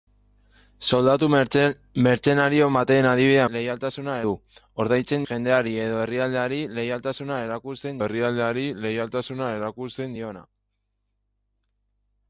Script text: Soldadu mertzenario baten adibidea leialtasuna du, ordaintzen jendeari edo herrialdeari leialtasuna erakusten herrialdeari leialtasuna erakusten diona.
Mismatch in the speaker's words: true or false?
false